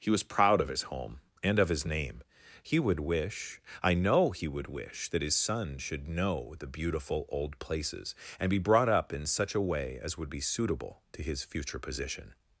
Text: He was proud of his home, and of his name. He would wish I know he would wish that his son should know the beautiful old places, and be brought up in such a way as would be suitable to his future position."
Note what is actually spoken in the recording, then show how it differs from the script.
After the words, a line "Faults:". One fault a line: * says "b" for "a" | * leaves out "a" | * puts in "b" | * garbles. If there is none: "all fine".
He was proud of his home, and of his name. He would wish I know he would wish that his son should know the beautiful old places, and be brought up in such a way as would be suitable to his future position."
Faults:
all fine